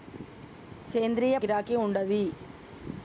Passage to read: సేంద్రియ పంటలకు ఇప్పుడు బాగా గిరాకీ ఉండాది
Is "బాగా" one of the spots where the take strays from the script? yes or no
yes